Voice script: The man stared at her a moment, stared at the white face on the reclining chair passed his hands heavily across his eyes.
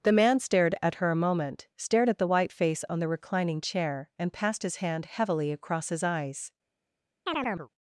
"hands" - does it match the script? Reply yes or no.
no